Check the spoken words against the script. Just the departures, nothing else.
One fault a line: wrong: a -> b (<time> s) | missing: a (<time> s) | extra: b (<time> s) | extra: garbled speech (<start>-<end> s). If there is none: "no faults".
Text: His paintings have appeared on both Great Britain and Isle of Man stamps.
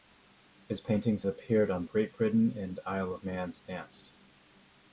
missing: have (1.2 s)
missing: both (1.9 s)